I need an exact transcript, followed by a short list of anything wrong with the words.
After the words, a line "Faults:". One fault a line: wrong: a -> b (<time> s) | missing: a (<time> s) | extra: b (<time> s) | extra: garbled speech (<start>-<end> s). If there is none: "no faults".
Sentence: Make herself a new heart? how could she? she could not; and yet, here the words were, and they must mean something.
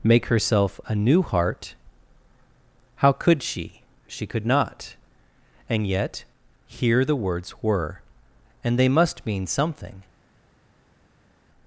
Make herself a new heart? how could she? she could not; and yet, here the words were, and they must mean something.
Faults:
no faults